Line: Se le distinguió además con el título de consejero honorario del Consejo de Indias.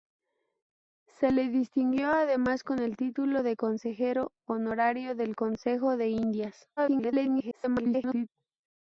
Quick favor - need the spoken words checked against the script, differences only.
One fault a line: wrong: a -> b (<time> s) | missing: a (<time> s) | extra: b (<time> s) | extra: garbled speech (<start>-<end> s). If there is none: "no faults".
extra: garbled speech (6.8-8.3 s)